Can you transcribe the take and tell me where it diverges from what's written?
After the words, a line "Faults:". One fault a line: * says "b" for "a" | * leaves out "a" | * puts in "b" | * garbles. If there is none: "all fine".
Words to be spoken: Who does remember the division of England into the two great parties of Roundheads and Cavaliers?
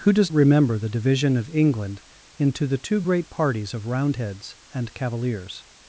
Who does remember the division of England into the two great parties of Roundheads and Cavaliers?
Faults:
all fine